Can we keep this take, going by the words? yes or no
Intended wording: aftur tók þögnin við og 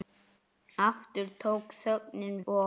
no